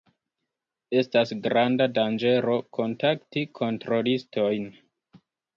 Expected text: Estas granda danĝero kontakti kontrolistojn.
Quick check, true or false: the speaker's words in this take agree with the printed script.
true